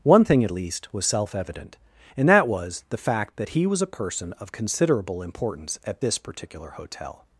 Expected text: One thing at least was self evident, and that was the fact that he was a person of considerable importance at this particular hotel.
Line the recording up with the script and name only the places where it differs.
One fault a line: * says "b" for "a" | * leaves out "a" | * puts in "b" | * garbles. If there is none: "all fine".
all fine